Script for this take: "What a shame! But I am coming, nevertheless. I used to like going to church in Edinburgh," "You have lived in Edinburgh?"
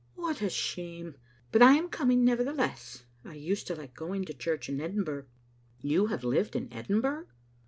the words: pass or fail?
pass